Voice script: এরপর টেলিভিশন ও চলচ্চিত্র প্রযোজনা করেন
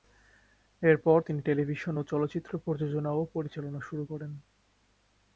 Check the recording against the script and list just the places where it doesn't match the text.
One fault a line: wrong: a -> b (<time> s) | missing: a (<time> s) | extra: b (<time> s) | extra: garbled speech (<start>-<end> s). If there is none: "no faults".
extra: তিনি (1.2 s)
extra: ও পরিচালনা শুরু (3.1 s)